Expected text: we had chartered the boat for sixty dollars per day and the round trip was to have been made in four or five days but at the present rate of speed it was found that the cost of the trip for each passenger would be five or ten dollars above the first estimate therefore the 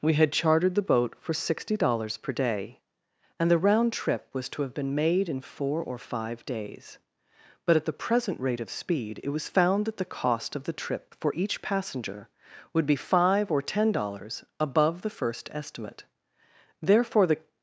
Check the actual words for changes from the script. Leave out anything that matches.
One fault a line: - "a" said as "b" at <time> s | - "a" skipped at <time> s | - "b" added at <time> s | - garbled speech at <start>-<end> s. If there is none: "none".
none